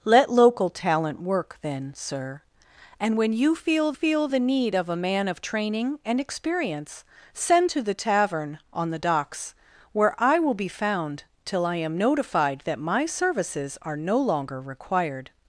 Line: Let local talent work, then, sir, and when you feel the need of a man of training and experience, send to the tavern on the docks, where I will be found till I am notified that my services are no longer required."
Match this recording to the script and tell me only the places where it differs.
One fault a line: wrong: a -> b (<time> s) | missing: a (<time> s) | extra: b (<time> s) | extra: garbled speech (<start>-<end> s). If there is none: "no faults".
extra: feel (3.9 s)